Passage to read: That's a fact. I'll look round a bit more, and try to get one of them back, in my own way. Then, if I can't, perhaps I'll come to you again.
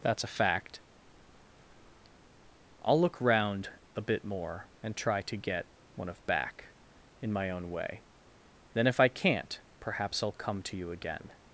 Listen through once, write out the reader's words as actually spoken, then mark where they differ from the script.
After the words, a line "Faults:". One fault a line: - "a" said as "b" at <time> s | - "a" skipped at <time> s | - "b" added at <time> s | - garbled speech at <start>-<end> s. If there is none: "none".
That's a fact. I'll look round a bit more, and try to get one of back, in my own way. Then, if I can't, perhaps I'll come to you again.
Faults:
- "them" skipped at 6.2 s